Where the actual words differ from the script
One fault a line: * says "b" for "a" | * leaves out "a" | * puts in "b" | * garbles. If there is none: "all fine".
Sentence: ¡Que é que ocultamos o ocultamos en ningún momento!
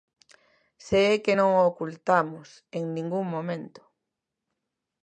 * says "Se" for "Que"
* says "non" for "ocultamos"